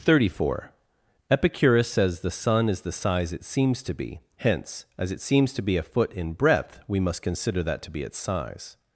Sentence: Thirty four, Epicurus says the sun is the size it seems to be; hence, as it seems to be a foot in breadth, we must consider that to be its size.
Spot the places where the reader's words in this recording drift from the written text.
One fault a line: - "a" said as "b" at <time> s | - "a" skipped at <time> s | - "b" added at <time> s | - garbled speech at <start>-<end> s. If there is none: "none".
none